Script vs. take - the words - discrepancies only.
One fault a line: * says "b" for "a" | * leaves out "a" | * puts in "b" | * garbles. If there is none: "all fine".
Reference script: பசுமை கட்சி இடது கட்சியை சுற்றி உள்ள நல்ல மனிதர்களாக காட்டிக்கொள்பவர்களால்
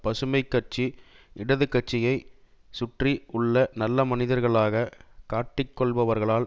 all fine